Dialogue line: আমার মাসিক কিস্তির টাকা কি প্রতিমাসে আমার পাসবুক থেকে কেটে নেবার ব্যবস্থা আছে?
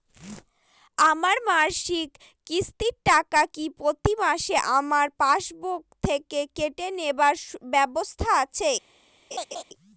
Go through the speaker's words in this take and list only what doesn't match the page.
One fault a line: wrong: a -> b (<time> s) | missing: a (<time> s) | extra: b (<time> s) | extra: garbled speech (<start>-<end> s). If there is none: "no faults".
no faults